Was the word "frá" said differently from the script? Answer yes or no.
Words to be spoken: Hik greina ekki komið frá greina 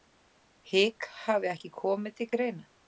yes